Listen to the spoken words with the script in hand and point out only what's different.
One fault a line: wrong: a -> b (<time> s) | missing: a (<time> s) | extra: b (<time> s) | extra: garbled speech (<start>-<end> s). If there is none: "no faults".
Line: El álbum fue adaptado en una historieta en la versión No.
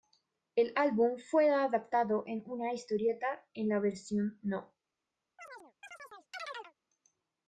no faults